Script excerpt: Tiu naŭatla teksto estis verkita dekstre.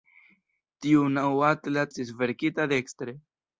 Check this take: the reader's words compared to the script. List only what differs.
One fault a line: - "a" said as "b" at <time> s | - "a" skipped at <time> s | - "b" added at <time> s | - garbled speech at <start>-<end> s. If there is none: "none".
- "teksto" skipped at 1.8 s